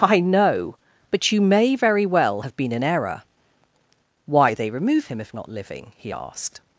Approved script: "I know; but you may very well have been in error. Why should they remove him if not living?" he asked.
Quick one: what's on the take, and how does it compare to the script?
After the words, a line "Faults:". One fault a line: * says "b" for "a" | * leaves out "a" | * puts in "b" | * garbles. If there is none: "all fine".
"I know; but you may very well have been in error. Why they remove him if not living?" he asked.
Faults:
* leaves out "should"